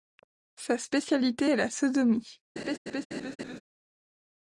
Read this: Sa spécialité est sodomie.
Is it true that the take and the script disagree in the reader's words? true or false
true